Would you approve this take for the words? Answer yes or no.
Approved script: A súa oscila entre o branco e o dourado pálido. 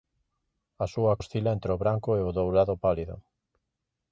yes